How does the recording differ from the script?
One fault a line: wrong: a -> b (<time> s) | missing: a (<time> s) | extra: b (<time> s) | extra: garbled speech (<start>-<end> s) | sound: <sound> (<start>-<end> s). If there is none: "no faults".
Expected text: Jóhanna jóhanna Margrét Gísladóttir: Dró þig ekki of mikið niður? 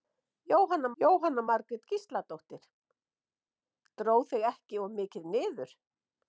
no faults